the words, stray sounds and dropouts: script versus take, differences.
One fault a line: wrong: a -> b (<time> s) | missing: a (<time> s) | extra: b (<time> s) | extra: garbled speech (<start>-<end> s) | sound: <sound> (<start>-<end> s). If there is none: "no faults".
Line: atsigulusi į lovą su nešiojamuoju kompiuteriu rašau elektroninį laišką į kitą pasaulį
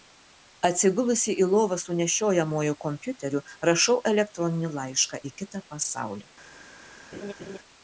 sound: laugh (7.1-7.6 s)